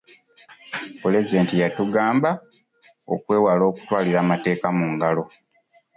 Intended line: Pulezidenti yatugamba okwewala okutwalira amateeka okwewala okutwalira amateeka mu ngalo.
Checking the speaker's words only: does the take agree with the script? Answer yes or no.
no